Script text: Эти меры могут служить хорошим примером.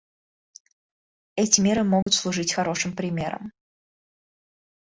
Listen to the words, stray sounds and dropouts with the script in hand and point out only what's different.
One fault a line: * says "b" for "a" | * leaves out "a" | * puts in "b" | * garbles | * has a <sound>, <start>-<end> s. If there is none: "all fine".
* has a dropout, 2.0-2.1 s